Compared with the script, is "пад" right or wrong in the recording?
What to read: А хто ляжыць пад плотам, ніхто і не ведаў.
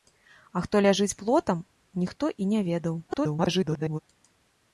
wrong